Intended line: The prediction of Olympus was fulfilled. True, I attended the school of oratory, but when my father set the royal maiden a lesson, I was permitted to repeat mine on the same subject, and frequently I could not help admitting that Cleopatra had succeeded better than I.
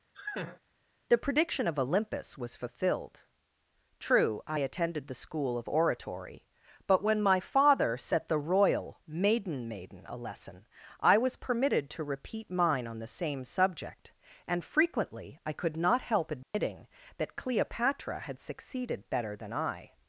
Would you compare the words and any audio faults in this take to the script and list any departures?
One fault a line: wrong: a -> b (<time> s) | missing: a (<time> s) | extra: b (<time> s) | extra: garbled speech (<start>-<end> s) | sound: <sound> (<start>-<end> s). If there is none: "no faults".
sound: laugh (0.1-0.6 s)
extra: maiden (9.7 s)
sound: dropout (16.4-16.5 s)